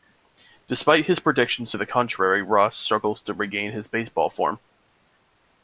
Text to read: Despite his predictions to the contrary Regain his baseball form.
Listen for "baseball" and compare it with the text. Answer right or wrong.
right